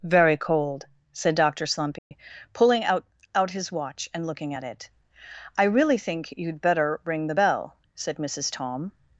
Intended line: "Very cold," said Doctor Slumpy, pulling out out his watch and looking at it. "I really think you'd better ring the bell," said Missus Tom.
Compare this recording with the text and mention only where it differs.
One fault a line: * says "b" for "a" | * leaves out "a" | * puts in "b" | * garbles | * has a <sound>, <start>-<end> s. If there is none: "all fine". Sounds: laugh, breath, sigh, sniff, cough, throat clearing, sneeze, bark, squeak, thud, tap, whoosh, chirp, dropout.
* has a dropout, 2.0-2.1 s